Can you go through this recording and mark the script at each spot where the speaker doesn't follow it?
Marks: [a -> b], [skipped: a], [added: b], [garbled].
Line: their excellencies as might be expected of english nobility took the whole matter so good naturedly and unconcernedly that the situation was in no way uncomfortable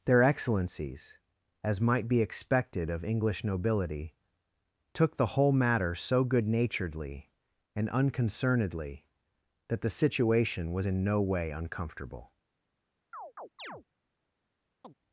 their excellencies as might be expected of english nobility took the whole matter so good naturedly and unconcernedly that the situation was in no way uncomfortable